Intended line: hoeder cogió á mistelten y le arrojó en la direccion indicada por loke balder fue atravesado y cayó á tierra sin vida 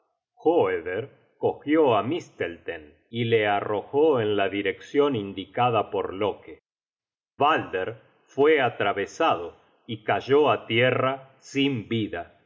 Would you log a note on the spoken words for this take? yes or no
no